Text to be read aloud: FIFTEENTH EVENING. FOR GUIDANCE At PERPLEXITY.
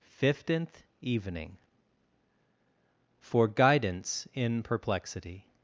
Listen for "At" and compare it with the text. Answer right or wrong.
wrong